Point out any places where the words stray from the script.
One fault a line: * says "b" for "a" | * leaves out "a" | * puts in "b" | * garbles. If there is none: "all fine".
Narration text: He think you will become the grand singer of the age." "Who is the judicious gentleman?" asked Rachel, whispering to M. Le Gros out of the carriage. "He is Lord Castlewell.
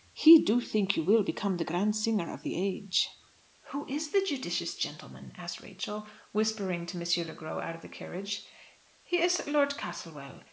* puts in "do"